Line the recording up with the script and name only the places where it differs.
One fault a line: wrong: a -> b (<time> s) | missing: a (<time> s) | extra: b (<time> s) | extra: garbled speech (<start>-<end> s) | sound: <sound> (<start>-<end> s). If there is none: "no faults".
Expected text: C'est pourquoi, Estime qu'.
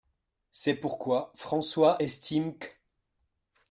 extra: François (1.4 s)